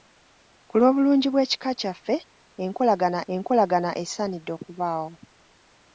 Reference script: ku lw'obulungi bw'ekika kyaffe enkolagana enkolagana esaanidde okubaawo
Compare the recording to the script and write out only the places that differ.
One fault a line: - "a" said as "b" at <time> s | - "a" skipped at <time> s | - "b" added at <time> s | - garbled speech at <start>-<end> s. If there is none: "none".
none